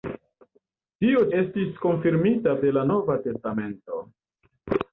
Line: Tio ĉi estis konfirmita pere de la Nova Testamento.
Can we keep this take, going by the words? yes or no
no